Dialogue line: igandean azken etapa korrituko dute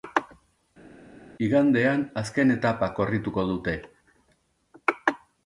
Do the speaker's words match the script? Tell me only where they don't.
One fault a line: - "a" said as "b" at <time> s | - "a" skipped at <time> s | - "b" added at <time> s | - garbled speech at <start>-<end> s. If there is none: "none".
none